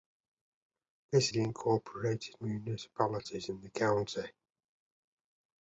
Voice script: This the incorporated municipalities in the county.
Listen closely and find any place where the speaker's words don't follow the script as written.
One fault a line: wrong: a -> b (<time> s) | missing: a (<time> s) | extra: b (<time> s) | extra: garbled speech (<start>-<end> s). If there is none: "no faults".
no faults